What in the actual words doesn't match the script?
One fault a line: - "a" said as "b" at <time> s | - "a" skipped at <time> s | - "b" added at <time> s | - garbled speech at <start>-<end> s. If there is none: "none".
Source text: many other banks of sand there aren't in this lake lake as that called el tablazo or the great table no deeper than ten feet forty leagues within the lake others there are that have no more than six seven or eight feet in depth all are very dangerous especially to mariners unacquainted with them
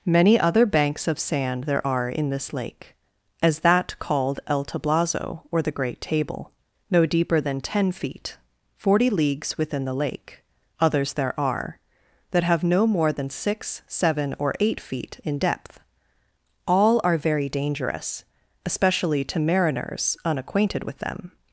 - "aren't" said as "are" at 1.8 s
- "lake" skipped at 2.9 s